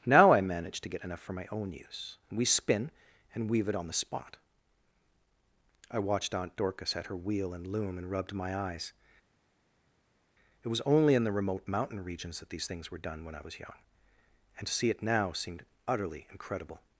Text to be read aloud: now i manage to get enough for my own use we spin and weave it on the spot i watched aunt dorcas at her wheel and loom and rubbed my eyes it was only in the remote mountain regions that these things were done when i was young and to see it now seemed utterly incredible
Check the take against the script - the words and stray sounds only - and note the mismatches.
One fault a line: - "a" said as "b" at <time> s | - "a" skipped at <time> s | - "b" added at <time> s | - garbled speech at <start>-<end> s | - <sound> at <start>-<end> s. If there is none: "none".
none